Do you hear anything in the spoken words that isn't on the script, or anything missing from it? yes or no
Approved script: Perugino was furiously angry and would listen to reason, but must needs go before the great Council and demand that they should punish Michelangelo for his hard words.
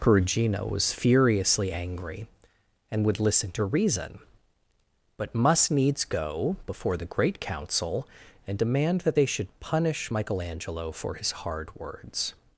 no